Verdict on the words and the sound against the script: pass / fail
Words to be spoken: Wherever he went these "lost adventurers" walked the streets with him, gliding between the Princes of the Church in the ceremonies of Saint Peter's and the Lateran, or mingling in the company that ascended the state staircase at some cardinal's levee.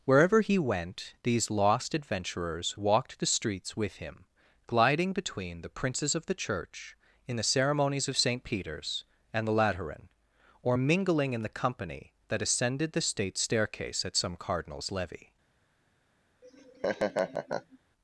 fail